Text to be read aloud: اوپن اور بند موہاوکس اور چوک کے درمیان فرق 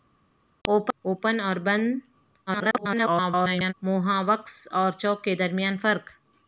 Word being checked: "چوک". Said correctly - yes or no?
yes